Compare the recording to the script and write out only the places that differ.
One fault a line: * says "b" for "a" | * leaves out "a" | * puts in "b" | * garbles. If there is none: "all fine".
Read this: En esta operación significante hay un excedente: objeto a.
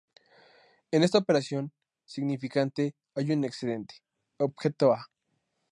all fine